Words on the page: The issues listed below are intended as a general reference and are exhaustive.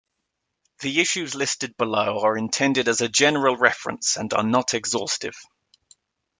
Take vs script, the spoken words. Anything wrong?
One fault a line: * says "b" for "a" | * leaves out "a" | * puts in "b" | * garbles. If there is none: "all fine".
* puts in "not"